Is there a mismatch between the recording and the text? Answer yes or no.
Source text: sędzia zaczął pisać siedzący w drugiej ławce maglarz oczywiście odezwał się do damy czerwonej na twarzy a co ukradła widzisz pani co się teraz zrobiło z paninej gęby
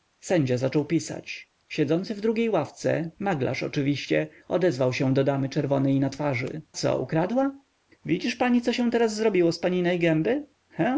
yes